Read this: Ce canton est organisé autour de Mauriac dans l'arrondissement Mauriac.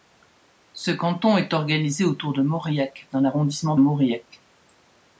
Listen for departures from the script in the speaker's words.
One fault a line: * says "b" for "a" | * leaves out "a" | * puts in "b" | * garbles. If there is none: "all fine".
all fine